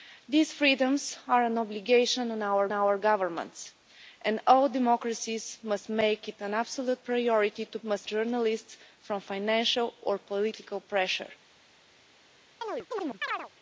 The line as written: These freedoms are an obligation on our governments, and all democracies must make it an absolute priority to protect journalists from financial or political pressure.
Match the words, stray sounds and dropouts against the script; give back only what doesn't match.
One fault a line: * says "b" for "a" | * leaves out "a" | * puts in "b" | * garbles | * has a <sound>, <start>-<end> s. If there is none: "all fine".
* puts in "our"
* says "must" for "protect"
* has a chirp, 12.6-13.5 s